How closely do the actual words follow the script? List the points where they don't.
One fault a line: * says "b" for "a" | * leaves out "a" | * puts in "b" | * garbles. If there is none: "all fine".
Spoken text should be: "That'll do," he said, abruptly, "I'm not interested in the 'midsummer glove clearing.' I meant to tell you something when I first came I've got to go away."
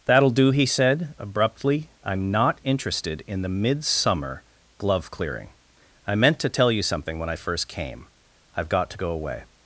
all fine